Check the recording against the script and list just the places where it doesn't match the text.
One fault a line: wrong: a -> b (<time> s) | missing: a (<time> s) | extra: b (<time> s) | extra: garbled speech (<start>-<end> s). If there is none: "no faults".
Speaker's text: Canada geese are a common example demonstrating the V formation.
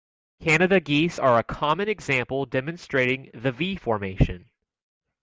no faults